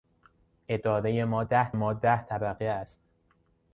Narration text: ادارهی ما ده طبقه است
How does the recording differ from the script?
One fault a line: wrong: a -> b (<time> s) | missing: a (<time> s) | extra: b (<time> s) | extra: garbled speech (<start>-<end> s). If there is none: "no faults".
extra: ما ده (1.7 s)